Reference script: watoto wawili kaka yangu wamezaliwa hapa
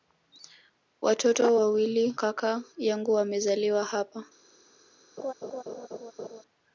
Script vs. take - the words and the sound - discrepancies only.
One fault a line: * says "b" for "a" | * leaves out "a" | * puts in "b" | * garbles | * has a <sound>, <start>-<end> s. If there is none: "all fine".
* has a laugh, 5.2-6.4 s